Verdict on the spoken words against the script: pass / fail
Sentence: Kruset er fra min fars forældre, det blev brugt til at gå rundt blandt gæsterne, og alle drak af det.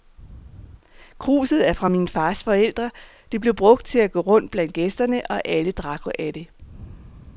pass